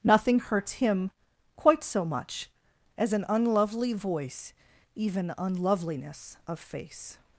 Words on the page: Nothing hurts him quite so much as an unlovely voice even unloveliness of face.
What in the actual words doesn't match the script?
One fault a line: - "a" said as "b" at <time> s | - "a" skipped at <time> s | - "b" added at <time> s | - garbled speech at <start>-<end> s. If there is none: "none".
none